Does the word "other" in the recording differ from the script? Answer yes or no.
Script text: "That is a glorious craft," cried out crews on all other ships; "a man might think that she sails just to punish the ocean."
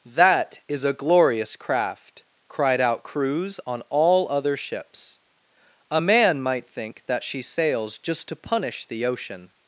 no